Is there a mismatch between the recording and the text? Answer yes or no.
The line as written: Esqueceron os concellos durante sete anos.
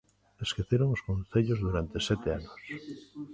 no